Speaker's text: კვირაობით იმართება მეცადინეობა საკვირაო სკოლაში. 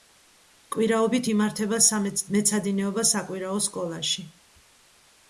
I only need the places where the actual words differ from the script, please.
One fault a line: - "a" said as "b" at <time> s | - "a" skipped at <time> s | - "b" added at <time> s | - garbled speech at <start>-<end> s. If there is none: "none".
none